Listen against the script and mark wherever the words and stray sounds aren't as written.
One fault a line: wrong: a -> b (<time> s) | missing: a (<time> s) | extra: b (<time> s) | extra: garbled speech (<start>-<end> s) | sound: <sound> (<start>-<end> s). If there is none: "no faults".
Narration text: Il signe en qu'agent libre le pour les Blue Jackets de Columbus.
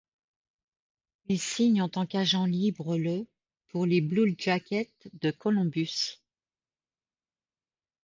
extra: tant (1.9 s)